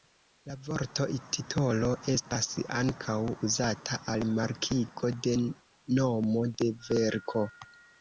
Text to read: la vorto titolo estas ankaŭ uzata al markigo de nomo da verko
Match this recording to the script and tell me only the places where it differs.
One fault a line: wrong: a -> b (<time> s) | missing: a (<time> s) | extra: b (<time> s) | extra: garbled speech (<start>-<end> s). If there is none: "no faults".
wrong: da -> de (6.6 s)